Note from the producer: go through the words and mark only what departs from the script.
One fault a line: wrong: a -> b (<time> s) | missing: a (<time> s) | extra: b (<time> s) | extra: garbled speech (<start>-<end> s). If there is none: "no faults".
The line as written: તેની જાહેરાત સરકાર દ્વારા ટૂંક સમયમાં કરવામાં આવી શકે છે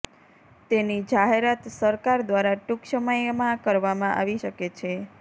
no faults